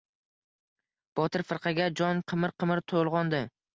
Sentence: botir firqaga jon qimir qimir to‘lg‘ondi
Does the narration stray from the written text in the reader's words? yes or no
no